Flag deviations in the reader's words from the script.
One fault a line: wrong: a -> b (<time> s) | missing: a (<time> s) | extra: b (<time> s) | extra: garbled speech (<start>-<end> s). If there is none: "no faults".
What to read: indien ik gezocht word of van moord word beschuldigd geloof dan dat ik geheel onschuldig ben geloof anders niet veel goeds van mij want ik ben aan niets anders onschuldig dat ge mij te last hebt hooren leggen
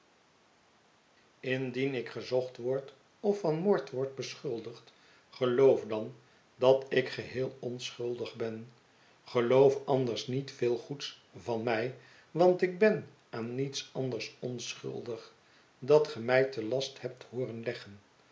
no faults